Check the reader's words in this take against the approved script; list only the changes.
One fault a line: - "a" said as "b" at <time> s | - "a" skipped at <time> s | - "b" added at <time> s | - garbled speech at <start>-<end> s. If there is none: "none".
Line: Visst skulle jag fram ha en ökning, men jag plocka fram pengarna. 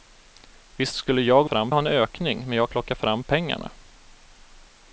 none